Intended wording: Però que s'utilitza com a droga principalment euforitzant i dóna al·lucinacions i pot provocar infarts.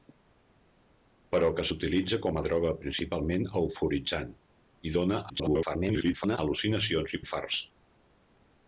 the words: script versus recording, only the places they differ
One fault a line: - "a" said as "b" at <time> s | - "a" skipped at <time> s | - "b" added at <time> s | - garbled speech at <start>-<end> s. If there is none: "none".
- garbled speech at 5.3-6.4 s
- "pot provocar" skipped at 7.2 s